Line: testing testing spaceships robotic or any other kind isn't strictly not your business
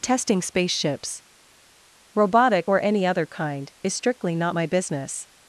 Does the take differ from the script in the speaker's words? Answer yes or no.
yes